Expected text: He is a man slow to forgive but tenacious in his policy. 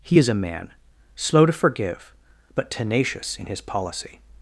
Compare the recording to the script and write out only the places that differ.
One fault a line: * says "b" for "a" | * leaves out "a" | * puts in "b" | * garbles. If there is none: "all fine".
all fine